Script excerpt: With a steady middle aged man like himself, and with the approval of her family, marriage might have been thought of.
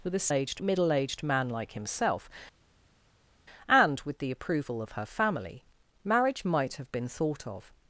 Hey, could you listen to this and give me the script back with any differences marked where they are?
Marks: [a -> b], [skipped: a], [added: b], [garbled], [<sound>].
With a [steady -> aged] middle aged man like himself, and with the approval of her family, marriage might have been thought of.